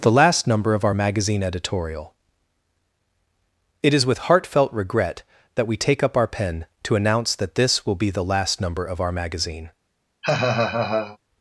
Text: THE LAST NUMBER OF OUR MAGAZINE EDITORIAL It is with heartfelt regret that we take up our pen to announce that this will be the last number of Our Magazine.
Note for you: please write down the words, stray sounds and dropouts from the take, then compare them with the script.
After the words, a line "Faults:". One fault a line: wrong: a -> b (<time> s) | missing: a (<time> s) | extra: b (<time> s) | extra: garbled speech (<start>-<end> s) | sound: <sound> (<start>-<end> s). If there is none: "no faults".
THE LAST NUMBER OF OUR MAGAZINE EDITORIAL It is with heartfelt regret that we take up our pen to announce that this will be the last number of Our Magazine.
Faults:
sound: laugh (10.2-11.2 s)